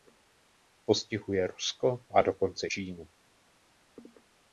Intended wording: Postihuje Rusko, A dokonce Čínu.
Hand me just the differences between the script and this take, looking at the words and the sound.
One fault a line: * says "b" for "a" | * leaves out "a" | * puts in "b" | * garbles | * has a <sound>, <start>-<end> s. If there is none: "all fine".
all fine